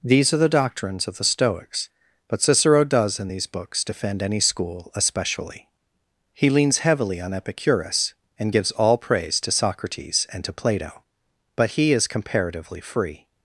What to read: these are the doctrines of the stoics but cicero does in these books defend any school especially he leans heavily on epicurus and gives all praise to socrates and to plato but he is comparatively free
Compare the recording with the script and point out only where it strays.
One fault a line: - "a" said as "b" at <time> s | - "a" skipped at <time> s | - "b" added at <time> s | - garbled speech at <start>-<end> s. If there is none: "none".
none